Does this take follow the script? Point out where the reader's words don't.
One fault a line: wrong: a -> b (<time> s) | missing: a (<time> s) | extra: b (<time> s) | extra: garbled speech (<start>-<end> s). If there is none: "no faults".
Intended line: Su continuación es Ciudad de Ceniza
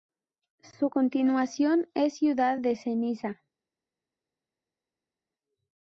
no faults